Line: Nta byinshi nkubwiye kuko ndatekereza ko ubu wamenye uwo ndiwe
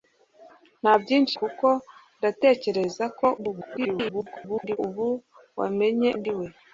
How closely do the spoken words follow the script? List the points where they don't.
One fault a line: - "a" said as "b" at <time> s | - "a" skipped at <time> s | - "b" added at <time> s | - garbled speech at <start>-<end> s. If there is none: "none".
- "nkubwiye" skipped at 1.4 s
- garbled speech at 3.4-4.8 s
- "uwo" skipped at 6.1 s